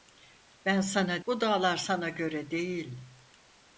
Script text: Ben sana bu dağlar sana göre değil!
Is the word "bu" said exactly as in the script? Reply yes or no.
yes